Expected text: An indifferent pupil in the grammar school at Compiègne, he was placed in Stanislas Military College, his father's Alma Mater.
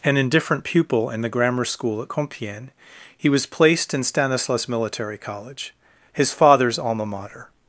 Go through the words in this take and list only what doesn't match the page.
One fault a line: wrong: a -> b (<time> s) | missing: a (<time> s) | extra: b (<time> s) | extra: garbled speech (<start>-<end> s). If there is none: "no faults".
no faults